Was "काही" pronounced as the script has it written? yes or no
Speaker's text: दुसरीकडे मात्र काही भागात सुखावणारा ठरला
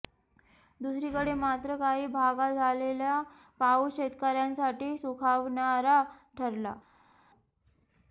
yes